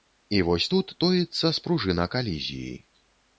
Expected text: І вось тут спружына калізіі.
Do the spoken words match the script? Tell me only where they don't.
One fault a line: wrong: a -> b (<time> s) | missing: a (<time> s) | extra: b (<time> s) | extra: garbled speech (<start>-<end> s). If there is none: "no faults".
extra: тоіцца (1.0 s)